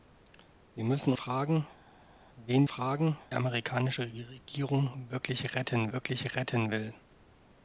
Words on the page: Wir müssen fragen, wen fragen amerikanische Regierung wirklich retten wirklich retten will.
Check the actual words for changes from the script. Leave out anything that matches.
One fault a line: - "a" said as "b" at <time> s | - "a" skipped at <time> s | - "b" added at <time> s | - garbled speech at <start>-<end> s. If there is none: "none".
none